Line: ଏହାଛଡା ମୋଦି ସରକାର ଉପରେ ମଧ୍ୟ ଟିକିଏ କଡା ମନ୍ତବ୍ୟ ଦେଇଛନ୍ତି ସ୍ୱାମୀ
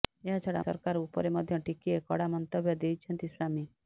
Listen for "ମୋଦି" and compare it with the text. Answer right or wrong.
wrong